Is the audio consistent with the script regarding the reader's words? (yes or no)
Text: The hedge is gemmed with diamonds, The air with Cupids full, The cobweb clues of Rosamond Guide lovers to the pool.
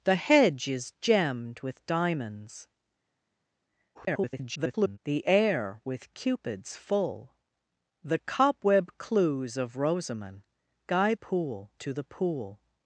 no